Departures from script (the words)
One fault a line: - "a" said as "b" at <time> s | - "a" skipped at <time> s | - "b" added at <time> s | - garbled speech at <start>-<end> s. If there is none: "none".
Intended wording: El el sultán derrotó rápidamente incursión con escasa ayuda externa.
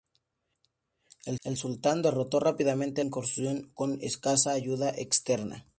none